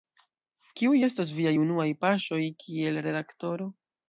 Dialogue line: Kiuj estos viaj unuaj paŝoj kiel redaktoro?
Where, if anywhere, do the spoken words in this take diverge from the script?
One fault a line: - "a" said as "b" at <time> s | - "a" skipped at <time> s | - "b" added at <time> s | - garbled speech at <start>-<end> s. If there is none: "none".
none